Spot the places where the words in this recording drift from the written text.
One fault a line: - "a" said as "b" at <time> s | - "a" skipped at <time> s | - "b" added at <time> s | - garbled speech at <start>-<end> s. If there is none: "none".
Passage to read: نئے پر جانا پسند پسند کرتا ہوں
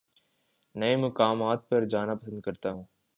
- "مقامات" added at 0.9 s
- "پسند" skipped at 2.4 s